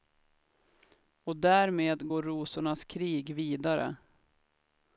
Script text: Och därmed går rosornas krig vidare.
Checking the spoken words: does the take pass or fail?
pass